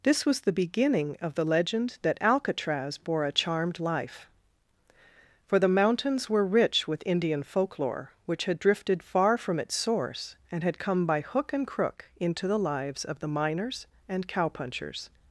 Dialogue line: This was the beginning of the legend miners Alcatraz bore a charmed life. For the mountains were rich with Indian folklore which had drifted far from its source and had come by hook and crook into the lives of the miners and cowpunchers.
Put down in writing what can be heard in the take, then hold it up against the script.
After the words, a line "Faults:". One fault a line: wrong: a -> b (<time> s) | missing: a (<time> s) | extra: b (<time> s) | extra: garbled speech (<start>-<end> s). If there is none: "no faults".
This was the beginning of the legend that Alcatraz bore a charmed life. For the mountains were rich with Indian folklore which had drifted far from its source and had come by hook and crook into the lives of the miners and cowpunchers.
Faults:
wrong: miners -> that (2.0 s)